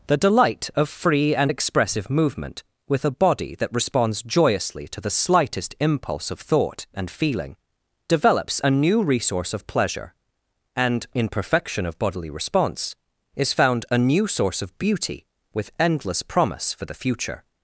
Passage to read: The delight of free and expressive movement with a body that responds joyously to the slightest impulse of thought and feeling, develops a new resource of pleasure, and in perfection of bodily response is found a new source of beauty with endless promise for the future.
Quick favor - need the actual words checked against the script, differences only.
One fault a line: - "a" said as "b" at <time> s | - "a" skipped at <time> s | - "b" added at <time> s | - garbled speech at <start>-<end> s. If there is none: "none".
none